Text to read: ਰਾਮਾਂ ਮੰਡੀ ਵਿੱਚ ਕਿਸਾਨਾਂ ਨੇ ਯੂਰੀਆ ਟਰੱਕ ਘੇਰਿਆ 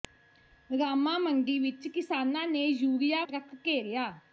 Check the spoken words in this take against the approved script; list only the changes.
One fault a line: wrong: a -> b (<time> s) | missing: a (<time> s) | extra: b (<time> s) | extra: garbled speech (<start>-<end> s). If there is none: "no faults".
no faults